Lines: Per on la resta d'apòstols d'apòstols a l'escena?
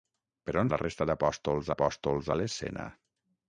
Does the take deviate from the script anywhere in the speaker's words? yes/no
no